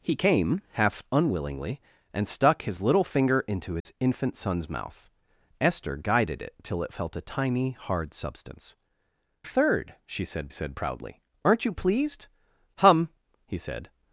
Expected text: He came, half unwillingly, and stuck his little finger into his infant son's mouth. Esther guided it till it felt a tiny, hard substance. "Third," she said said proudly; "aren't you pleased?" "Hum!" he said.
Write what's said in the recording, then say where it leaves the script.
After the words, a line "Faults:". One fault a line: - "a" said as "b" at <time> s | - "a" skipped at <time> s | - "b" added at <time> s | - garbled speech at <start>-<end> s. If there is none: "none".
He came, half unwillingly, and stuck his little finger into his infant son's mouth. Esther guided it till it felt a tiny, hard substance. "Third," she said said proudly; "aren't you pleased?" "Hum!" he said.
Faults:
none